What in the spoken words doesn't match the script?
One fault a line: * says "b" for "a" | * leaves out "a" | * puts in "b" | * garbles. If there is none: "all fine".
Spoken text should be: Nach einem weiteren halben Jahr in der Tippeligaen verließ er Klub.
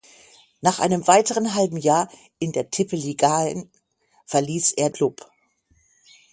all fine